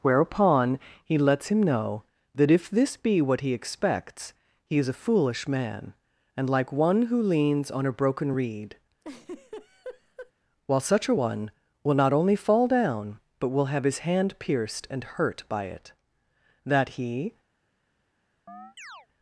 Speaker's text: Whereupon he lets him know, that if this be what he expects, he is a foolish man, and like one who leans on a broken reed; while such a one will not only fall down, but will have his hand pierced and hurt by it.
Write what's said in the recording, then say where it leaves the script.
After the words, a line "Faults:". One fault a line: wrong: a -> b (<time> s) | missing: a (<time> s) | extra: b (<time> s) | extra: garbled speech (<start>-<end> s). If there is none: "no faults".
Whereupon he lets him know, that if this be what he expects, he is a foolish man, and like one who leans on a broken reed; while such a one will not only fall down, but will have his hand pierced and hurt by it. That he
Faults:
extra: That he (16.6 s)